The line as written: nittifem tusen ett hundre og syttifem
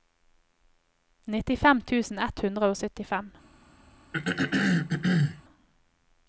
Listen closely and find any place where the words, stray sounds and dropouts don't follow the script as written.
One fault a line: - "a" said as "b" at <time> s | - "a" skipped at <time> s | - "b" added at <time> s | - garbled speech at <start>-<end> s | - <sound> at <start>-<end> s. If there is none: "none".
- throat clearing at 4.1-5.4 s